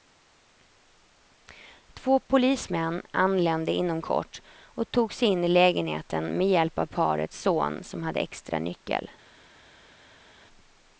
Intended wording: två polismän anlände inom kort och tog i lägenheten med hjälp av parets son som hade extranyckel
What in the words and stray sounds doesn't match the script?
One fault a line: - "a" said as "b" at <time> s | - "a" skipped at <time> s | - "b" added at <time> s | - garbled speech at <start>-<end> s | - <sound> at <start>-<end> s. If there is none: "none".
- "sig in" added at 5.1 s